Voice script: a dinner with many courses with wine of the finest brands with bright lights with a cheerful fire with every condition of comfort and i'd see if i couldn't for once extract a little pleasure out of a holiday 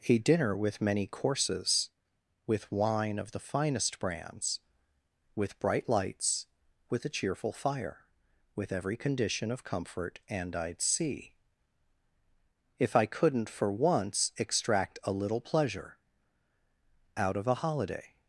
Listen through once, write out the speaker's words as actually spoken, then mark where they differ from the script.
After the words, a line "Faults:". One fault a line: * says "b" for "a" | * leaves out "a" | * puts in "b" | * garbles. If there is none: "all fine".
a dinner with many courses with wine of the finest brands with bright lights with a cheerful fire with every condition of comfort and i'd see if i couldn't for once extract a little pleasure out of a holiday
Faults:
all fine